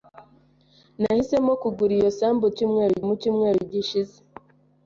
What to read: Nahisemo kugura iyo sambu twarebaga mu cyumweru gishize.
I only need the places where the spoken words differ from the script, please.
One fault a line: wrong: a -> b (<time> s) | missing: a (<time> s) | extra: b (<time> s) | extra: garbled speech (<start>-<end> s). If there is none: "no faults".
wrong: twarebaga -> cyumweru (2.6 s)